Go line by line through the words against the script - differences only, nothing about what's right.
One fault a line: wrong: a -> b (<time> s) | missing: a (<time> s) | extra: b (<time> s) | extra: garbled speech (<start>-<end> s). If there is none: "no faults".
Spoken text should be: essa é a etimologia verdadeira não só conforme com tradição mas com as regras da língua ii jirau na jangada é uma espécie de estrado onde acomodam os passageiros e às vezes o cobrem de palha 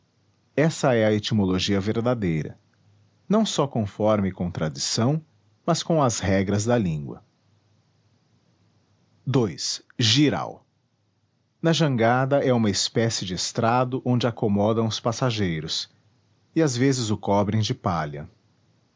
no faults